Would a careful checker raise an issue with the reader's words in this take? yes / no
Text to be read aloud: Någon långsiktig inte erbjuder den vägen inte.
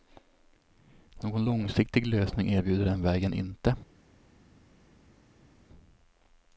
yes